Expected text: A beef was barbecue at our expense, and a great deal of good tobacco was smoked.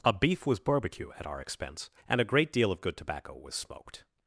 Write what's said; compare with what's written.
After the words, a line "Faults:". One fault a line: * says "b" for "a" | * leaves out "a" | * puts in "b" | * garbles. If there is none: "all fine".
A beef was barbecue at our expense, and a great deal of good tobacco was smoked.
Faults:
all fine